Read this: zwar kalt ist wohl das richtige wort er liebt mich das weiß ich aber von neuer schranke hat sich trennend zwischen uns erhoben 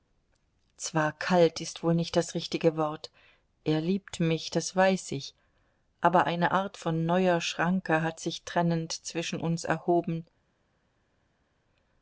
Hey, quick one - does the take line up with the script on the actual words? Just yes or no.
no